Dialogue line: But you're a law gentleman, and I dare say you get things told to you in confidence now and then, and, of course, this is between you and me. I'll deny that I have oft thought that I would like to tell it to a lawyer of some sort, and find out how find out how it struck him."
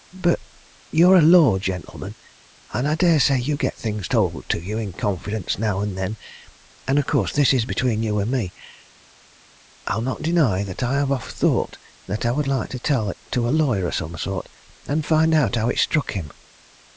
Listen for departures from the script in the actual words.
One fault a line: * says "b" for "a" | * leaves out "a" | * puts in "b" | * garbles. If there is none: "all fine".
* puts in "not"
* leaves out "find out how"